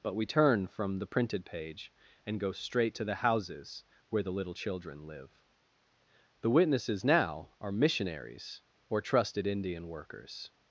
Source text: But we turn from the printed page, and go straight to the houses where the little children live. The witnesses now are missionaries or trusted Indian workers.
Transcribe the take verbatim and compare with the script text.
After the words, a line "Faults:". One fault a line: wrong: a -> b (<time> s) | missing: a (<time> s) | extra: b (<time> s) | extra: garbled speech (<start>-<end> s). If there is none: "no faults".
But we turn from the printed page, and go straight to the houses where the little children live. The witnesses now are missionaries or trusted Indian workers.
Faults:
no faults